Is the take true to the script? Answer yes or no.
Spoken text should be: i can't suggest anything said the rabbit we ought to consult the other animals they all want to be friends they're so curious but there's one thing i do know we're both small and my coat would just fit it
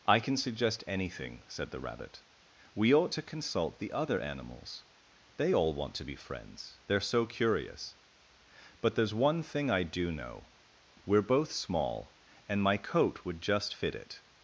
no